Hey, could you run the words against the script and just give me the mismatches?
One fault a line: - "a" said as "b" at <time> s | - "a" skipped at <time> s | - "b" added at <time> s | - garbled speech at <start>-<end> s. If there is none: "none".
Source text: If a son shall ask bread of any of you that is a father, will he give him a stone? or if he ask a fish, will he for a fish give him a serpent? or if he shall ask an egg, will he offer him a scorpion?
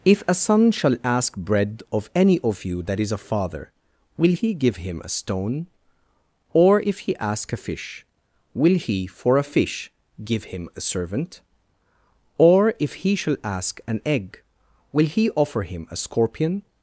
- "serpent" said as "servant" at 10.8 s